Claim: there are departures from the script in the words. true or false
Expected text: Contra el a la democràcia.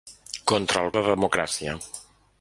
false